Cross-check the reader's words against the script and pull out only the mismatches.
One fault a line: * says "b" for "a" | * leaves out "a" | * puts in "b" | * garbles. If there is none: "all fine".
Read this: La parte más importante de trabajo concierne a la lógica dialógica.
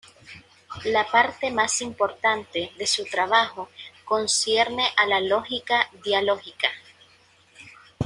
* puts in "su"